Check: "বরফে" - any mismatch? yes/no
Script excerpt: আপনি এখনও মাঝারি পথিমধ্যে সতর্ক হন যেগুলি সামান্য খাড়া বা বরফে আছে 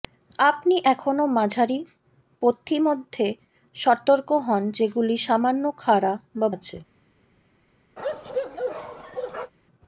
yes